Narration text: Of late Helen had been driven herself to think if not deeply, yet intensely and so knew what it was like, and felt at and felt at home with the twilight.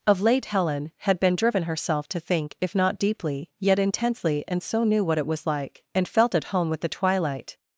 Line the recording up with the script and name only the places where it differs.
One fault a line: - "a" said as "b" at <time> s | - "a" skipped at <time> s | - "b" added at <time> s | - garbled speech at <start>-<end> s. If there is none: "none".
- "and felt at" skipped at 6.4 s